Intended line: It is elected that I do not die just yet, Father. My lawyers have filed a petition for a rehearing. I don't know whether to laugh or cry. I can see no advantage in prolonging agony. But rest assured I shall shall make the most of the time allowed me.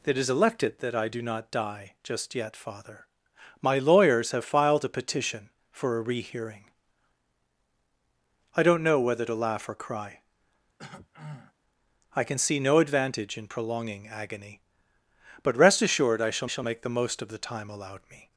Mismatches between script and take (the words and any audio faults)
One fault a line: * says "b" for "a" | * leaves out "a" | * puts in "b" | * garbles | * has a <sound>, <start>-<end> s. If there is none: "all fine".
* has a throat clearing, 10.8-11.5 s